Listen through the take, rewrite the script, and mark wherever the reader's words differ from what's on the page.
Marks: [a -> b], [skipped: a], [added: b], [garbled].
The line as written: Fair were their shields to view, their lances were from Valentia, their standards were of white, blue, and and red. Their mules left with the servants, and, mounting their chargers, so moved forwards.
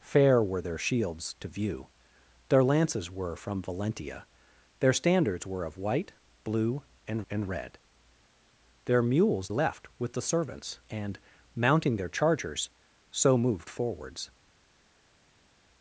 Fair were their shields to view, their lances were from Valentia, their standards were of white, blue, and and red. Their mules left with the servants, and, mounting their chargers, so moved forwards.